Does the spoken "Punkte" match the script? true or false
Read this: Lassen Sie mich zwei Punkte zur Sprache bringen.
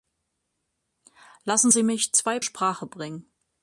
false